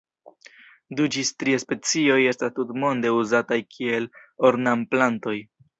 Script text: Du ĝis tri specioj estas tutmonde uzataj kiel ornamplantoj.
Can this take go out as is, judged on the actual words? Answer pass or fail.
pass